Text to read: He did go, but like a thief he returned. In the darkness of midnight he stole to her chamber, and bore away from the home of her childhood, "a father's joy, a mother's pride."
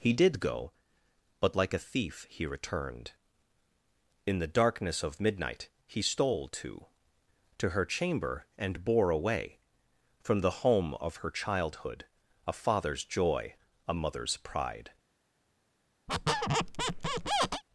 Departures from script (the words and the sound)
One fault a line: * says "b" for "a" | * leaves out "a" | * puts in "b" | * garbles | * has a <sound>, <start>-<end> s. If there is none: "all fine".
* puts in "to"
* has a squeak, 16.1-17.6 s